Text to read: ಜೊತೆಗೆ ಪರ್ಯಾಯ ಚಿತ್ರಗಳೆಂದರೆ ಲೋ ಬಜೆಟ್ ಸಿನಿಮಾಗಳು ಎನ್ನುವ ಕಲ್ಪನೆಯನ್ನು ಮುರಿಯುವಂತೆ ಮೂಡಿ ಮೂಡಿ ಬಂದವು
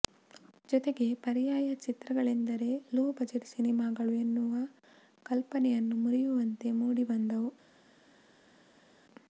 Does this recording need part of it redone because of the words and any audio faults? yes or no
yes